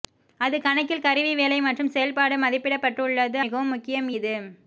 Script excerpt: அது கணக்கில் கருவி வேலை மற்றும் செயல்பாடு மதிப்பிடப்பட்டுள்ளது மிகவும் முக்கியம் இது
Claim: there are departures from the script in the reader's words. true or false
false